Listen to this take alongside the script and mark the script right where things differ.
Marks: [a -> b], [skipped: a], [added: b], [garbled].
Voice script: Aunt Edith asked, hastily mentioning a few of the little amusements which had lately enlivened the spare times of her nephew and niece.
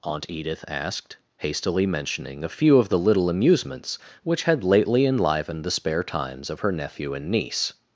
Aunt Edith asked, hastily mentioning a few of the little amusements which had lately enlivened the spare times of her nephew and niece.